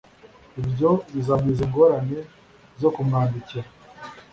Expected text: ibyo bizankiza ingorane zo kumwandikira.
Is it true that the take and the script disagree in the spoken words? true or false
false